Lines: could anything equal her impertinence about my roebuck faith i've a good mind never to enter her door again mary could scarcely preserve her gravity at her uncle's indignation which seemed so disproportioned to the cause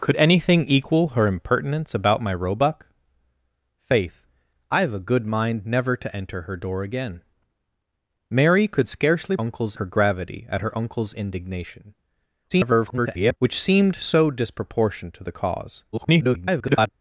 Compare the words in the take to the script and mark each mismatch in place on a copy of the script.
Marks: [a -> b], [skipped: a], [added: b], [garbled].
could anything equal her impertinence about my roebuck faith i've a good mind never to enter her door again mary could scarcely [preserve -> uncle's] her gravity at her uncle's indignation [garbled] which seemed so disproportioned to the cause [garbled]